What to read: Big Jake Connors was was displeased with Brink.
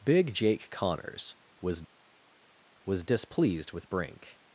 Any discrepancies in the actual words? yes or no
no